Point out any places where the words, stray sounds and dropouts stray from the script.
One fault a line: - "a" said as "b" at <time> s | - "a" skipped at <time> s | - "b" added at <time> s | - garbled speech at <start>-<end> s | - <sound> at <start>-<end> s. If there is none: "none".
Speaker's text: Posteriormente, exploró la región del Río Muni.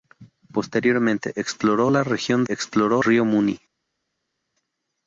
- "del" said as "exploró" at 2.5 s